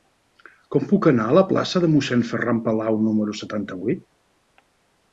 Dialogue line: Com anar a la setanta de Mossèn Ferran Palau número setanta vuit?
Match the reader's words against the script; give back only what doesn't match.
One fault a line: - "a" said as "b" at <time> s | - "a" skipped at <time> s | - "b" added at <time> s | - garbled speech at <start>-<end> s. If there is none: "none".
- "puc" added at 0.9 s
- "setanta" said as "plaça" at 1.5 s